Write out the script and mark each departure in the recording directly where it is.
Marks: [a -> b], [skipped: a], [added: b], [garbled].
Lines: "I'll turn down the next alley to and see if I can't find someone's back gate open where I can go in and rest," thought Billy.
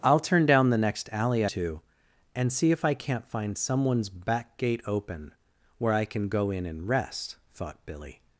"I'll turn down the next alley to and see if I can't find someone's back gate open where I can go in and rest," thought Billy.